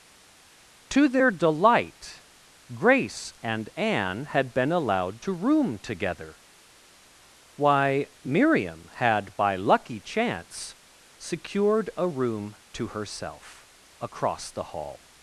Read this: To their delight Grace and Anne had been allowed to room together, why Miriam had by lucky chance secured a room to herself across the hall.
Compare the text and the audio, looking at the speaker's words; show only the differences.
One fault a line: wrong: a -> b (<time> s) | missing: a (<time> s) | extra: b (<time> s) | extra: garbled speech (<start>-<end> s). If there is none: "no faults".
no faults